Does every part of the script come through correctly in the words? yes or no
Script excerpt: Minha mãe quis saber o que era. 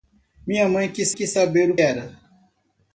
no